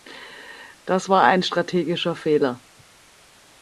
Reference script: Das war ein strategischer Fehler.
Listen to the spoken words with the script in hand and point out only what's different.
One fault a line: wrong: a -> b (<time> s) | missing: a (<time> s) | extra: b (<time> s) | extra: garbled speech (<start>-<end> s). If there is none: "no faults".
no faults